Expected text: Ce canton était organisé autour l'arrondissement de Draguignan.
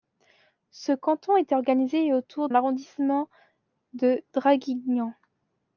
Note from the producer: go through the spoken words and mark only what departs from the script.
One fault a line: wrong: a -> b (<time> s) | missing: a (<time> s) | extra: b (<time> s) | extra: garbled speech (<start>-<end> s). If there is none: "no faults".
no faults